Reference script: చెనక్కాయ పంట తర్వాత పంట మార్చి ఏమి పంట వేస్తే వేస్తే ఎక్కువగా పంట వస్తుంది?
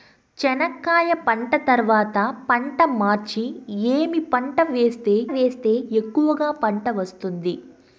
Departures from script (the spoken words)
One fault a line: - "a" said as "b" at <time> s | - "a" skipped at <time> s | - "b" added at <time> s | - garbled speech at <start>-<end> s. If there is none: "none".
none